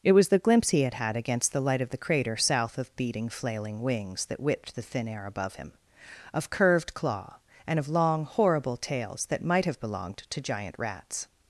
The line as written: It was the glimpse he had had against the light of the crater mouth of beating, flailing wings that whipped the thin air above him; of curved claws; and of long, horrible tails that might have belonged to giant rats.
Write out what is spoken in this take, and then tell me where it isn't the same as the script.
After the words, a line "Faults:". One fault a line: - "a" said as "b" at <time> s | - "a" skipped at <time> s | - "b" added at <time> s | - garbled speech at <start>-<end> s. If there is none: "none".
It was the glimpse he had had against the light of the crater south of beating, flailing wings that whipped the thin air above him; of curved claw; and of long, horrible tails that might have belonged to giant rats.
Faults:
- "mouth" said as "south" at 2.4 s
- "claws" said as "claw" at 6.9 s